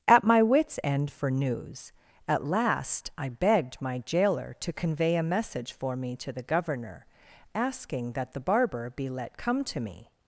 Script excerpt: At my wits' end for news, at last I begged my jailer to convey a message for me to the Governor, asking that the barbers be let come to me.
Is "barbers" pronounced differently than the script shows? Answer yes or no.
yes